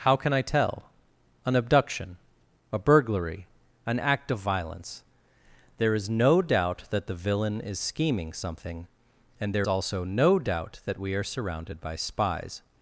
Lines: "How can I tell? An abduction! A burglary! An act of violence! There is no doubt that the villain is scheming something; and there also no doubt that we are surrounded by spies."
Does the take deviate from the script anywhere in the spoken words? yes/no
no